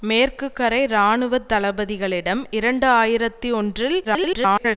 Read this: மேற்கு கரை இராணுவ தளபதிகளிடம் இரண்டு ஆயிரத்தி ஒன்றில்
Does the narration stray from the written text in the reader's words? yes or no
yes